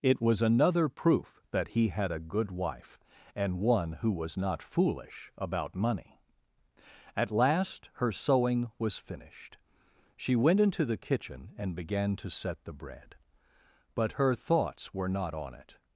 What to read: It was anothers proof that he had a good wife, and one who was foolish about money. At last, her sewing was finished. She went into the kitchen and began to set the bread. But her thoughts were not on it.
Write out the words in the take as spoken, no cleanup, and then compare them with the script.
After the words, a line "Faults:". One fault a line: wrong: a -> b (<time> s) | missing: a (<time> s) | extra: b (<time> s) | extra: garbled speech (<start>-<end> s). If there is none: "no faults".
It was another proof that he had a good wife, and one who was not foolish about money. At last, her sewing was finished. She went into the kitchen and began to set the bread. But her thoughts were not on it.
Faults:
wrong: anothers -> another (0.4 s)
extra: not (4.3 s)